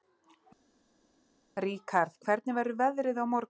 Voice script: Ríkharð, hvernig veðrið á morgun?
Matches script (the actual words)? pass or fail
fail